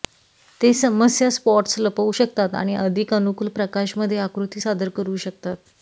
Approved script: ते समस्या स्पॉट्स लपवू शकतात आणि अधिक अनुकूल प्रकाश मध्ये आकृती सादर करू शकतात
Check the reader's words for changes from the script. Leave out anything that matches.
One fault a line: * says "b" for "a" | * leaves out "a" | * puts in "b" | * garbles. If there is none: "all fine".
all fine